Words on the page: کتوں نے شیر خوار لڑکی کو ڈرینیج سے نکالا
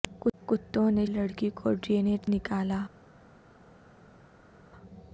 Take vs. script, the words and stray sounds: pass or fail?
fail